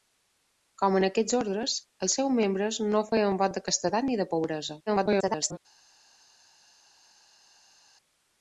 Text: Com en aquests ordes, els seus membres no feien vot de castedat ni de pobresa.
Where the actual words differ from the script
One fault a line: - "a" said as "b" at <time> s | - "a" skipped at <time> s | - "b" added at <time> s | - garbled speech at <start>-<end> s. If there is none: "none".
- garbled speech at 4.9-5.6 s